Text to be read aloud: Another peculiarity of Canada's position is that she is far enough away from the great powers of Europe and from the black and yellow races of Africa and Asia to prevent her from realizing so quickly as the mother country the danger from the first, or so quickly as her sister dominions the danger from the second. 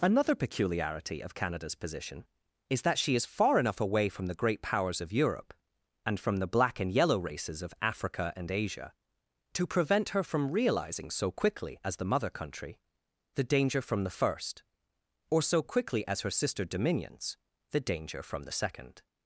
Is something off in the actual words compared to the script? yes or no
no